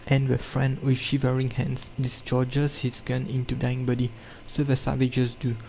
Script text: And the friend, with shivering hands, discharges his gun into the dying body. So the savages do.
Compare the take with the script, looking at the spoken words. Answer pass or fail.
fail